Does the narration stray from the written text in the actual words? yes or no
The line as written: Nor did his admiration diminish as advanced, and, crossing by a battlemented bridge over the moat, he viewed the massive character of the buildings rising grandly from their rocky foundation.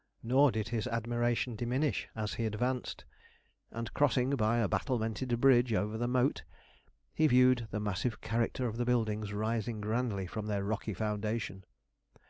yes